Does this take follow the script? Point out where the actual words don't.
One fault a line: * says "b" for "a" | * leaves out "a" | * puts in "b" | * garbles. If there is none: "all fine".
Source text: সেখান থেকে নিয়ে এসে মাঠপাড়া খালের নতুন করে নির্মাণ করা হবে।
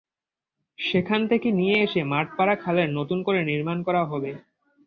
all fine